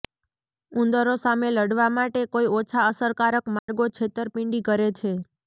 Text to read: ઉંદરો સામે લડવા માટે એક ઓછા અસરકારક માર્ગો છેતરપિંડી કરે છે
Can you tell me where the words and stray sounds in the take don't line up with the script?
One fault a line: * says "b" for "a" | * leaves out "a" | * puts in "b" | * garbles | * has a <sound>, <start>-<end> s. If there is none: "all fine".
* says "કોઈ" for "એક"
* has a dropout, 3.6-3.7 s